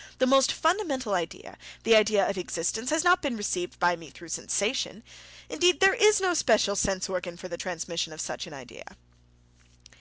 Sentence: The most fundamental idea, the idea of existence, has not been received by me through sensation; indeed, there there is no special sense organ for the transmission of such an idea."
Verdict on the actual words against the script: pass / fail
fail